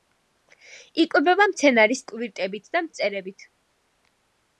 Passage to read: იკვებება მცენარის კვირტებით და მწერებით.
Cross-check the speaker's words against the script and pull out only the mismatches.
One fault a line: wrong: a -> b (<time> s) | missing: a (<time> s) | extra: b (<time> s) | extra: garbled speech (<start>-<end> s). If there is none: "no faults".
no faults